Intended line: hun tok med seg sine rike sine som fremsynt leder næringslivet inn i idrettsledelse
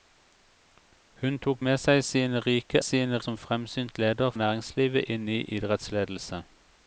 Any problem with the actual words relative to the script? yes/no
no